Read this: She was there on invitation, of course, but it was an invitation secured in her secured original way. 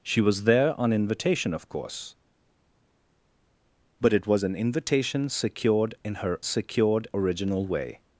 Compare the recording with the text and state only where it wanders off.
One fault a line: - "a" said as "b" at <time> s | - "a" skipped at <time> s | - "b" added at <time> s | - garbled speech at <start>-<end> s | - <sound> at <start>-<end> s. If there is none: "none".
none